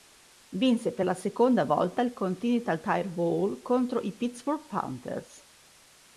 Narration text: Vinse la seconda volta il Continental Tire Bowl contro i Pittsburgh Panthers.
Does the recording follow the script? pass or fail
fail